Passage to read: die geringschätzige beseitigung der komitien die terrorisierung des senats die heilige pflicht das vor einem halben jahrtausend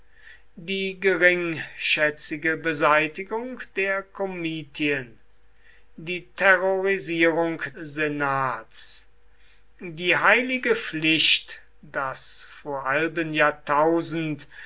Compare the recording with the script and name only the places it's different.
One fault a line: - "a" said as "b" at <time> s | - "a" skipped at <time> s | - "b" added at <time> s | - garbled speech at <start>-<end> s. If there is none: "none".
- "des" skipped at 7.6 s
- "einem" skipped at 12.9 s